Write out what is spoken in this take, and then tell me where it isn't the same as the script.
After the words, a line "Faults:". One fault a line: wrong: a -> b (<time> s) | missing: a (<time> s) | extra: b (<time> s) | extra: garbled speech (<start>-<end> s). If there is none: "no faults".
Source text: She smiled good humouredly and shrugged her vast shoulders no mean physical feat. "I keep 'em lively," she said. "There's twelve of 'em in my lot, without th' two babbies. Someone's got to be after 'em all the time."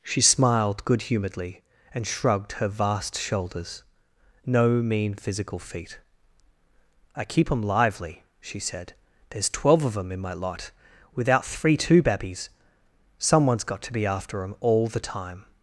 She smiled good humouredly and shrugged her vast shoulders no mean physical feat. "I keep 'em lively," she said. "There's twelve of 'em in my lot, without three' two babbies. Someone's got to be after 'em all the time."
Faults:
wrong: th -> three (11.4 s)